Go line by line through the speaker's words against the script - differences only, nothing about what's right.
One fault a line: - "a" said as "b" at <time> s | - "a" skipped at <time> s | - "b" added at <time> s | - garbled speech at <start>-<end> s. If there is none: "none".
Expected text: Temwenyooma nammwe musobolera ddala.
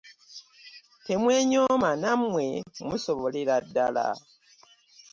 none